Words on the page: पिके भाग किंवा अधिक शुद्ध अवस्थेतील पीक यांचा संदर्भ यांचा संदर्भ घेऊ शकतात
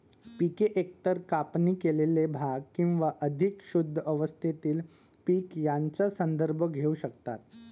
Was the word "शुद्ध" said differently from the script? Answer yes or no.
no